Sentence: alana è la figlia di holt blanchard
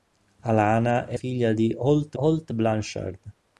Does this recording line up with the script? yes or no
no